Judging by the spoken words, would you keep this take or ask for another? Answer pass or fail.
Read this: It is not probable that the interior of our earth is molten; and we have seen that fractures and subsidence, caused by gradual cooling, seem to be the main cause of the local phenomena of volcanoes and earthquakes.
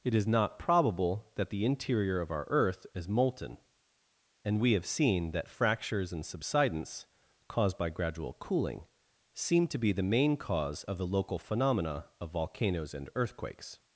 pass